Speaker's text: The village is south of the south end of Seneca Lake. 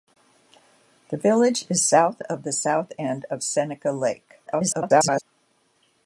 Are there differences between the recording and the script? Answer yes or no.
yes